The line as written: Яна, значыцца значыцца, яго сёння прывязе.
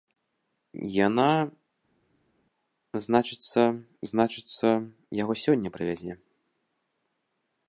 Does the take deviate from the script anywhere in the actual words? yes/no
no